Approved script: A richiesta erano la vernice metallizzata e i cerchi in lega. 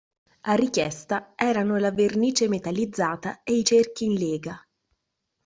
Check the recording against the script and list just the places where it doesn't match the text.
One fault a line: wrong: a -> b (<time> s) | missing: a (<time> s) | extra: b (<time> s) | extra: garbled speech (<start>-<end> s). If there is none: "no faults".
no faults